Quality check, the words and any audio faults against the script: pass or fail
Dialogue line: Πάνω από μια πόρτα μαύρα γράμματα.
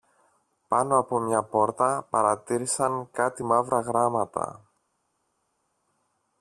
fail